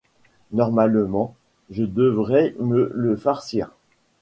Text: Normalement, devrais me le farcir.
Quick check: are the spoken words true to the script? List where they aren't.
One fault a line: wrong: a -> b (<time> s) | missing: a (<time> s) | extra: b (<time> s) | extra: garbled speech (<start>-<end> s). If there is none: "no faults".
extra: je (1.7 s)